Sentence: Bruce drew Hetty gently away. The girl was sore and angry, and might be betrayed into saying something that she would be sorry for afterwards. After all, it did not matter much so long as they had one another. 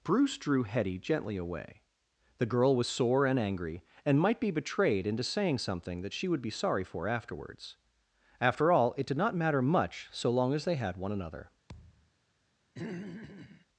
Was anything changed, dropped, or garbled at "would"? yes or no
no